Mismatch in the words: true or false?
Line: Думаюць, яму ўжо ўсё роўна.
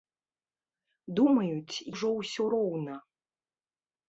true